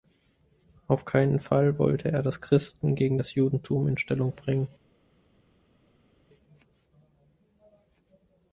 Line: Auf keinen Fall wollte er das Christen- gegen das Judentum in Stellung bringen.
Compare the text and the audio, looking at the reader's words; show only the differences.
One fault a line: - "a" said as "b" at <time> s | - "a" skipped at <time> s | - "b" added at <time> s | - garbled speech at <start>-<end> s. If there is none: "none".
none